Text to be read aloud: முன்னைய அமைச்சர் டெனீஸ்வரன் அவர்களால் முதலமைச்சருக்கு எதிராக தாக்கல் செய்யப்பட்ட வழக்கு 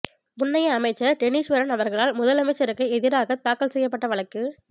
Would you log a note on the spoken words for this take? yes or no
no